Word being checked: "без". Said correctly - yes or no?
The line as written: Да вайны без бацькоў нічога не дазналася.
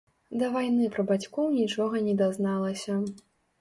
no